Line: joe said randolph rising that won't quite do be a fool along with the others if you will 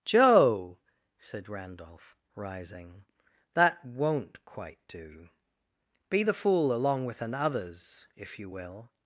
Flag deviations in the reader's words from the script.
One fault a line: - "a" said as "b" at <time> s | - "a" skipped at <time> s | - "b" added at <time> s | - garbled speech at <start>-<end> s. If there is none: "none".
- "a" said as "the" at 6.2 s
- "the" said as "an" at 7.2 s